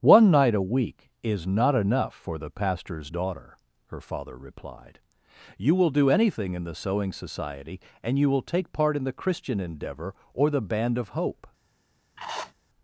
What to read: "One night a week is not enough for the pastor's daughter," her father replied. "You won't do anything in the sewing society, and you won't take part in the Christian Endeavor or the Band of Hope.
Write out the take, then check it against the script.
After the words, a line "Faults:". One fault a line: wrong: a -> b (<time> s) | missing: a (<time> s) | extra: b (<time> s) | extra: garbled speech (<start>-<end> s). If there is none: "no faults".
"One night a week is not enough for the pastor's daughter," her father replied. "You will do anything in the sewing society, and you will take part in the Christian Endeavor or the Band of Hope.
Faults:
wrong: won't -> will (5.7 s)
wrong: won't -> will (8.3 s)